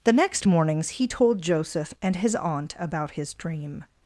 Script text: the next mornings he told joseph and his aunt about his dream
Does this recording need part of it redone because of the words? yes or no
no